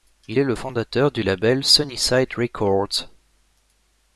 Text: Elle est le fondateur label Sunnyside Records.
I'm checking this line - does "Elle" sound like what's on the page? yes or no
no